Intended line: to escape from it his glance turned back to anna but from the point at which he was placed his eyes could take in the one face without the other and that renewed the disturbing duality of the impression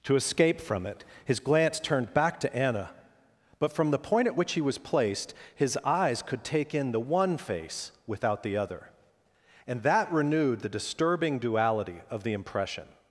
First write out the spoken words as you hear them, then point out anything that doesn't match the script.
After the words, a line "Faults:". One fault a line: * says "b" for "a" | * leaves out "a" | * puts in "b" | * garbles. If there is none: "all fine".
to escape from it his glance turned back to anna but from the point at which he was placed his eyes could take in the one face without the other and that renewed the disturbing duality of the impression
Faults:
all fine